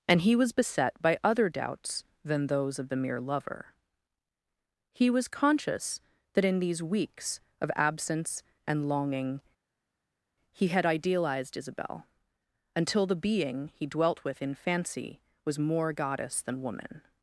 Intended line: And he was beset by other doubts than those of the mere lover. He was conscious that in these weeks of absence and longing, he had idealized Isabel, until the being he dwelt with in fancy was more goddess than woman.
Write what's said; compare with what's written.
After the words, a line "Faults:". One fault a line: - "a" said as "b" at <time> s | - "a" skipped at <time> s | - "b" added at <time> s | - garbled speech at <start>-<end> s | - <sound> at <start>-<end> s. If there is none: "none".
And he was beset by other doubts than those of the mere lover. He was conscious that in these weeks of absence and longing, he had idealized Isabel, until the being he dwelt with in fancy was more goddess than woman.
Faults:
none